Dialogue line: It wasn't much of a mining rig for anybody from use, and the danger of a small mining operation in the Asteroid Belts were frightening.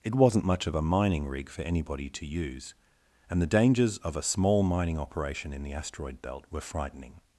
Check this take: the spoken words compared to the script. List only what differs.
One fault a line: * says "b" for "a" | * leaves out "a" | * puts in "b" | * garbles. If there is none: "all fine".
* says "to" for "from"
* says "dangers" for "danger"
* says "Belt" for "Belts"